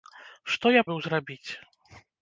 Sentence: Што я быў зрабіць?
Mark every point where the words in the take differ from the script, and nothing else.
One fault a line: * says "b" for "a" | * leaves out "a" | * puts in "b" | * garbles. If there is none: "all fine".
all fine